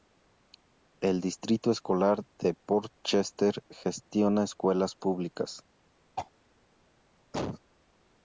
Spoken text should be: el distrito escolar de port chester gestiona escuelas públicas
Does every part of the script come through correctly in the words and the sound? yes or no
no